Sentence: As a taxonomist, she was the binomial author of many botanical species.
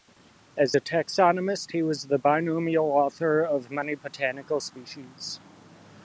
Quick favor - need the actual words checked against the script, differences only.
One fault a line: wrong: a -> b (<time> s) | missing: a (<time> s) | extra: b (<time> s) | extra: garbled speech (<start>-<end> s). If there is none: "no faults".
wrong: she -> he (1.7 s)